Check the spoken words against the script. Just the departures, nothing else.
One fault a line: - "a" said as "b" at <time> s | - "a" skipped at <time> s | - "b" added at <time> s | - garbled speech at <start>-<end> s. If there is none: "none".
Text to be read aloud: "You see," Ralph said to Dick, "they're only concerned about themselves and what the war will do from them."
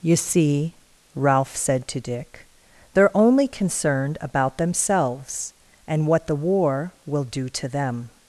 - "from" said as "to" at 7.5 s